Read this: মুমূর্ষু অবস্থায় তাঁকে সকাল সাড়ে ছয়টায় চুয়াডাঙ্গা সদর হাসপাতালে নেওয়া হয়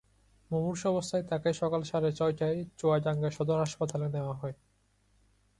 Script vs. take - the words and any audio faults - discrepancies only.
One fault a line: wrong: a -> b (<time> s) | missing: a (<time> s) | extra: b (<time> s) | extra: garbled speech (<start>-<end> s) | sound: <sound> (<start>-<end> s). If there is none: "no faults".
no faults